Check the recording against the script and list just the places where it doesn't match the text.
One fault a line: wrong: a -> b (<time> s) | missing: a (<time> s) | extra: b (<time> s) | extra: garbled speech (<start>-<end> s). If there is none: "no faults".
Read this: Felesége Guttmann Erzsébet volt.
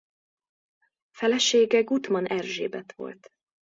no faults